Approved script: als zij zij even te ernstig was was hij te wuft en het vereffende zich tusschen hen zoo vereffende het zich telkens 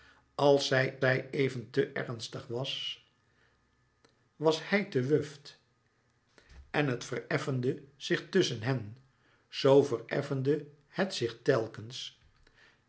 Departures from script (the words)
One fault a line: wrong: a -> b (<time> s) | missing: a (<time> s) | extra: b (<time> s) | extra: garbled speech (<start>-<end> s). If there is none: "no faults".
no faults